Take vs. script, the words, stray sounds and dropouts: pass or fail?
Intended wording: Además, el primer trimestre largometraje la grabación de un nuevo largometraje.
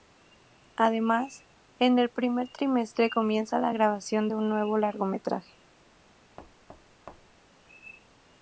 fail